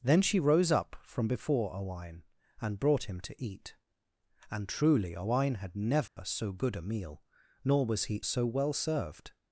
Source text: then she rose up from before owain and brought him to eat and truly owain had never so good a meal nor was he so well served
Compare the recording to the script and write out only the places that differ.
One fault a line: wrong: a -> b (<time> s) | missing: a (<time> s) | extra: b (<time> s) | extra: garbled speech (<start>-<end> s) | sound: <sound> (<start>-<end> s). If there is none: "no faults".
sound: dropout (6.1-6.2 s)